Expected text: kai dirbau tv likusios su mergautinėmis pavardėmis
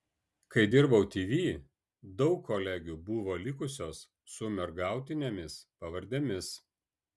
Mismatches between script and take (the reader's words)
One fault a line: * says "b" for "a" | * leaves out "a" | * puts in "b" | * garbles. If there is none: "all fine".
* puts in "daug kolegių buvo"